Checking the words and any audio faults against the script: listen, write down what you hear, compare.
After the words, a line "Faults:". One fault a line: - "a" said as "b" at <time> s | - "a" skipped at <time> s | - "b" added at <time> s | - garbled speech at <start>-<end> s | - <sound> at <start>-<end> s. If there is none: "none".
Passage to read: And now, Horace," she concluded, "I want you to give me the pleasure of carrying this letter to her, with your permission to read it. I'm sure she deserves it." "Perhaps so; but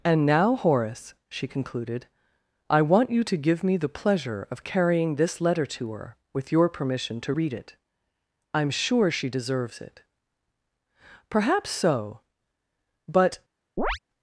And now, Horace," she concluded, "I want you to give me the pleasure of carrying this letter to her, with your permission to read it. I'm sure she deserves it." "Perhaps so; but
Faults:
- chirp at 13.8-14.0 s